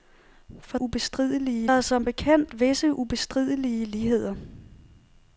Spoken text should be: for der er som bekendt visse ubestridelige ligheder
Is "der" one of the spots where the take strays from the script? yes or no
yes